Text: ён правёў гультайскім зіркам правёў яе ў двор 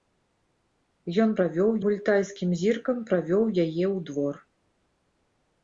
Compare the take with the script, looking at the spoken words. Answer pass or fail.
pass